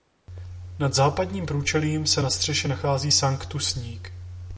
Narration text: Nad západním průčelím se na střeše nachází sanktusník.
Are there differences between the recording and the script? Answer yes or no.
no